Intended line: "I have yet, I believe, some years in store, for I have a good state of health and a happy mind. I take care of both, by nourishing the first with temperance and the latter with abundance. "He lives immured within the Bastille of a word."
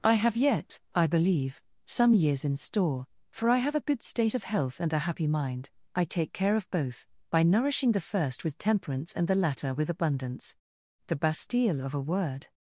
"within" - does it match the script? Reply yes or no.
no